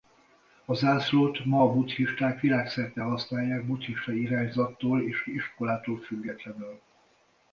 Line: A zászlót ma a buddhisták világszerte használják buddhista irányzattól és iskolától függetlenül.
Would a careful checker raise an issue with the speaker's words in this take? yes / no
no